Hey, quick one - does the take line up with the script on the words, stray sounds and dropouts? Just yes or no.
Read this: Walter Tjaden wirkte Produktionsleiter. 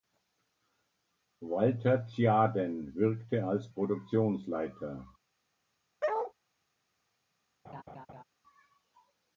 no